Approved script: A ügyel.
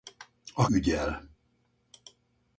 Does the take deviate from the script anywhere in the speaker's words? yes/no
no